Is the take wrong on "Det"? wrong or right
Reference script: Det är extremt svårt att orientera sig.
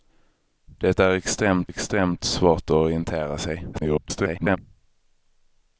right